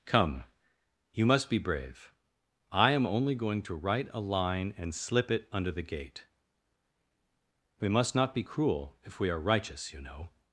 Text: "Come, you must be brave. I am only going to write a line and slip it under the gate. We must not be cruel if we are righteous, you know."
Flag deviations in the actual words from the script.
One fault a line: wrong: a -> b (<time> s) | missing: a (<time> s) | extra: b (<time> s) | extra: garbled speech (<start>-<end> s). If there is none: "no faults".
no faults